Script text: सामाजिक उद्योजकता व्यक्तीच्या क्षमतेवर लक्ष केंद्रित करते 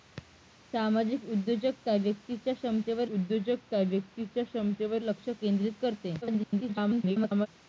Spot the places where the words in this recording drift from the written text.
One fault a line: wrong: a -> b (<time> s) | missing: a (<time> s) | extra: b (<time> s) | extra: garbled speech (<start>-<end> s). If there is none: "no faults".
extra: उद्योजकता व्यक्तीच्या क्षमतेवर (3.1 s)
extra: garbled speech (6.2-7.5 s)